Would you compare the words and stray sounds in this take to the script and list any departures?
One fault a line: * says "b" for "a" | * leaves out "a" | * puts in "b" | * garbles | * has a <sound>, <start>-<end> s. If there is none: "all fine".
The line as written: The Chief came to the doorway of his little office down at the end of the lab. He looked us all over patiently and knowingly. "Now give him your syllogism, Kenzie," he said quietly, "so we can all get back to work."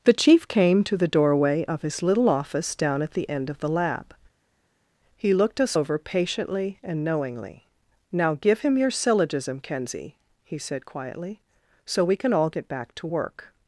* leaves out "all"